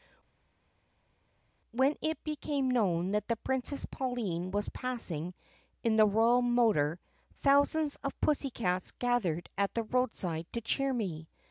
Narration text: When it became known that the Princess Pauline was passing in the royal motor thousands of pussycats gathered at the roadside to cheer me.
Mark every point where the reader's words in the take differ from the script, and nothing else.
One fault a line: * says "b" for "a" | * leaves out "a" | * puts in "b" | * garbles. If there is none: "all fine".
all fine